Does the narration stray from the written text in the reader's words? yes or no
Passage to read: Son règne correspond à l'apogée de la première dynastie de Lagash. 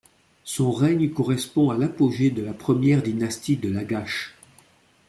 no